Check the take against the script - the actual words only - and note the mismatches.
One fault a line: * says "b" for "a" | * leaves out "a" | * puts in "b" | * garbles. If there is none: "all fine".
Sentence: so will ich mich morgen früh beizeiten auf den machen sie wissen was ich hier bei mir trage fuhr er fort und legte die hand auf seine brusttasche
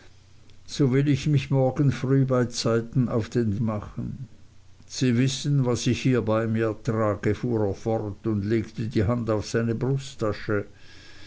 all fine